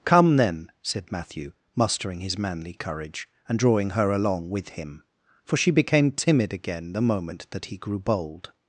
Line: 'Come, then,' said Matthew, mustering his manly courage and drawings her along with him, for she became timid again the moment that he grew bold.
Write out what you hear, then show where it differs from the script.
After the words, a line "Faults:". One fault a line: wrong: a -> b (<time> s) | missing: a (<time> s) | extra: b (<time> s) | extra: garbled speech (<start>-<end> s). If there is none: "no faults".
'Come, then,' said Matthew, mustering his manly courage and drawing her along with him, for she became timid again the moment that he grew bold.
Faults:
wrong: drawings -> drawing (3.6 s)